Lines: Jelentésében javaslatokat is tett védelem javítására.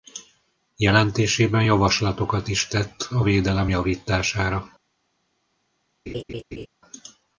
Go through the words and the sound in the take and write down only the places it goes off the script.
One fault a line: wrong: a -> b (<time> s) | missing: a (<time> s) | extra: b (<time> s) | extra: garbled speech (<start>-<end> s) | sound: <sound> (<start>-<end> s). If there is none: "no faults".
extra: a (3.1 s)
sound: laugh (6.1-6.7 s)